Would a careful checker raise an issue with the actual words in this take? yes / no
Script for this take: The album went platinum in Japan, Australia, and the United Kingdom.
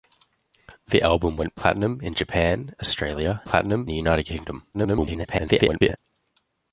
yes